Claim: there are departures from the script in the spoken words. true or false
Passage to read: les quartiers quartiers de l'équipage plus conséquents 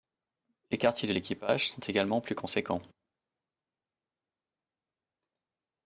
true